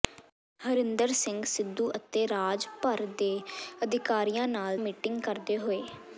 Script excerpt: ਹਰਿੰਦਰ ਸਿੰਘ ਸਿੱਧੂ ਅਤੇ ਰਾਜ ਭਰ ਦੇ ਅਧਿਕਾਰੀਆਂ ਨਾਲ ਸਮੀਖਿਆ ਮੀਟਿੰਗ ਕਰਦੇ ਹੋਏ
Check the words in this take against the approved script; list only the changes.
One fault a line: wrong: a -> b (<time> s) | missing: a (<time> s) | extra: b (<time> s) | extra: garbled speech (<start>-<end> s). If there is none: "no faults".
missing: ਸਮੀਖਿਆ (4.8 s)